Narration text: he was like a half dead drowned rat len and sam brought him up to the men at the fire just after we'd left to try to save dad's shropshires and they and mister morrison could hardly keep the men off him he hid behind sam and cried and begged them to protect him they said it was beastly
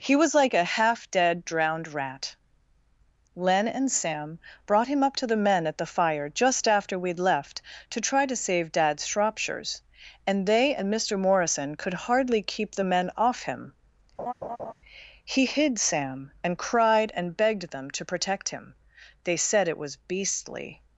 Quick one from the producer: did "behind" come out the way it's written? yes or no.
no